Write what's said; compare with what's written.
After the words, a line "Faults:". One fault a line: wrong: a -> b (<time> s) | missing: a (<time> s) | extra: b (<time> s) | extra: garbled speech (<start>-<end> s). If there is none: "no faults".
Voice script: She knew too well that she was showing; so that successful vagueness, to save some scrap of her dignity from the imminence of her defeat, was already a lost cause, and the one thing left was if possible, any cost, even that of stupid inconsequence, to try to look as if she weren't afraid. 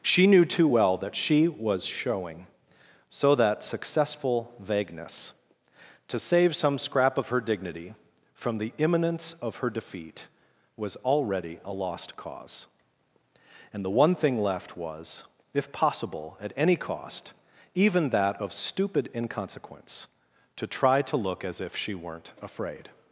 She knew too well that she was showing; so that successful vagueness, to save some scrap of her dignity from the imminence of her defeat, was already a lost cause, and the one thing left was if possible, at any cost, even that of stupid inconsequence, to try to look as if she weren't afraid.
Faults:
extra: at (16.4 s)